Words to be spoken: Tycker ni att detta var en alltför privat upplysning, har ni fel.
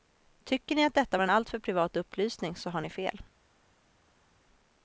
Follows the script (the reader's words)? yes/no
no